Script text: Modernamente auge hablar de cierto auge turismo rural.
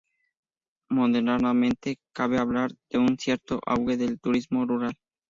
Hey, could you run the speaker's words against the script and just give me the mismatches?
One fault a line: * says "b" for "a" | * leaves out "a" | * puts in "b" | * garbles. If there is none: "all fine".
* says "cabe" for "auge"
* puts in "un"
* puts in "del"